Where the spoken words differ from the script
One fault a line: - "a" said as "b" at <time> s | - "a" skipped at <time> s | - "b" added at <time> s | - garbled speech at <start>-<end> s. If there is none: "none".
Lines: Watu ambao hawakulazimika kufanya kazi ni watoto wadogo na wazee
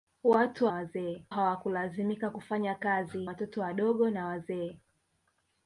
- "ambao" said as "wazee" at 0.7 s
- "ni" skipped at 3.3 s